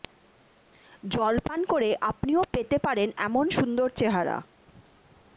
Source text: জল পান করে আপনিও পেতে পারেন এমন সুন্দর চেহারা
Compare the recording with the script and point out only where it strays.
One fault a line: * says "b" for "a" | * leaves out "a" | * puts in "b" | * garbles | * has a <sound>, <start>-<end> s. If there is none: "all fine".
all fine